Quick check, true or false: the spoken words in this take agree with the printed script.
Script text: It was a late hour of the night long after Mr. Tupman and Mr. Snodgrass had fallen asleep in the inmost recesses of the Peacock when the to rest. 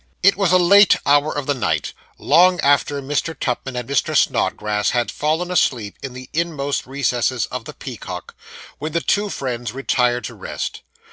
false